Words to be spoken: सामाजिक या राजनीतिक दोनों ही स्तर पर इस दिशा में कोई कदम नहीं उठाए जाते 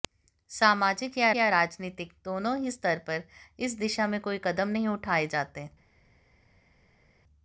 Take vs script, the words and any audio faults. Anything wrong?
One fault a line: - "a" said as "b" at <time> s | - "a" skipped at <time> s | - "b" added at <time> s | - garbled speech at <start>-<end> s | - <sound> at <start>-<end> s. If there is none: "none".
- "या" added at 1.3 s